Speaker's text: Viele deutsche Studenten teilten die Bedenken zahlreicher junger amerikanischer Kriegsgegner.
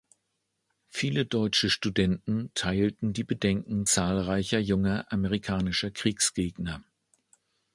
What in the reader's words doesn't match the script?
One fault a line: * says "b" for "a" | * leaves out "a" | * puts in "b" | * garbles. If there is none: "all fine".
all fine